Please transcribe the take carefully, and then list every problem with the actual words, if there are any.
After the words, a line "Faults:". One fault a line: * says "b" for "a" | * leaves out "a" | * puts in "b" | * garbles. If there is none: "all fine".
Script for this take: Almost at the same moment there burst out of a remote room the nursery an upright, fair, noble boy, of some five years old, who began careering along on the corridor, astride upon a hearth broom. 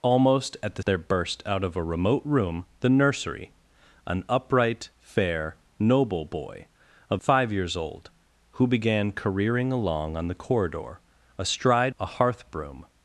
Almost at the there burst out of a remote room the nursery an upright, fair, noble boy, of five years old, who began careering along on the corridor, astride a hearth broom.
Faults:
* leaves out "same moment"
* leaves out "some"
* leaves out "upon"